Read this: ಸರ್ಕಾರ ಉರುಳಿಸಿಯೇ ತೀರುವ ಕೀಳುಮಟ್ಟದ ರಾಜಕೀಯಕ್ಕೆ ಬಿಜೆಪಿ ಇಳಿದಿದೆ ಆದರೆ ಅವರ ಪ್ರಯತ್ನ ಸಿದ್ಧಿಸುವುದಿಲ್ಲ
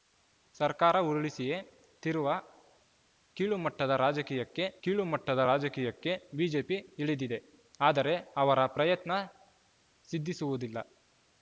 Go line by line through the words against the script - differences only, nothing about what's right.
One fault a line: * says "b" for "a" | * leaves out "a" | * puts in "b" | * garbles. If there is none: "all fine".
* puts in "ಕೀಳುಮಟ್ಟದ ರಾಜಕೀಯಕ್ಕೆ"